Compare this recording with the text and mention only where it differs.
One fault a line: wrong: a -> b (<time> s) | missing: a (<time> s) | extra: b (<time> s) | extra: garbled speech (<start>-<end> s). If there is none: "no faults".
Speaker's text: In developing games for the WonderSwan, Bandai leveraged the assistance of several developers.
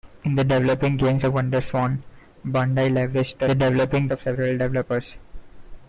missing: for (1.2 s)
wrong: assistance -> developing (3.5 s)